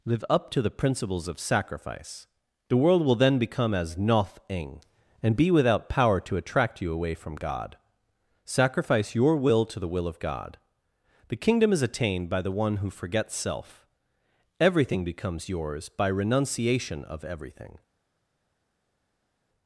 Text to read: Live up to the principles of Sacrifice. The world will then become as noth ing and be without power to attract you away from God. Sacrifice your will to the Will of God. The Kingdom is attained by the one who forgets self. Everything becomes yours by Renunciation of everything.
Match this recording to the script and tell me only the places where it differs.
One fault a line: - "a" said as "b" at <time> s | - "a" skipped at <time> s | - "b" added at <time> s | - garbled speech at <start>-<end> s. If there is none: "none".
none